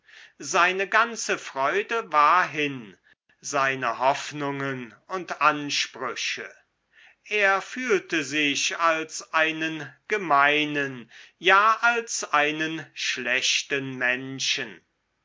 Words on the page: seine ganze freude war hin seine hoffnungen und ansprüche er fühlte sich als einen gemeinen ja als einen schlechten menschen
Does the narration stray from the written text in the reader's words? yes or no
no